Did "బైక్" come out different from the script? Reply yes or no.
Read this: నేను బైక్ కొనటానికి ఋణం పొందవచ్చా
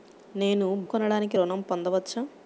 yes